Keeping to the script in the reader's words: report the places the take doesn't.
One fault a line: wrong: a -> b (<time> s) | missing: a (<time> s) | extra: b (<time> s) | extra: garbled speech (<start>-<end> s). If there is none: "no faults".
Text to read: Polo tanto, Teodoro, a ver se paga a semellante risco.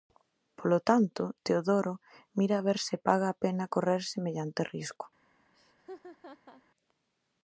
extra: mira (2.4 s)
extra: pena correr (3.4 s)